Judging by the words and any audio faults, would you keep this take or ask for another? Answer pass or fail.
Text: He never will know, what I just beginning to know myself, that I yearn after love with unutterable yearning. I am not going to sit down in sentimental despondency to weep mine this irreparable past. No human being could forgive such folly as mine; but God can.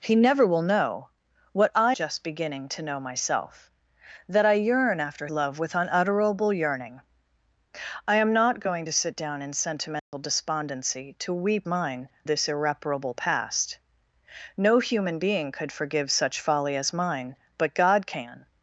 fail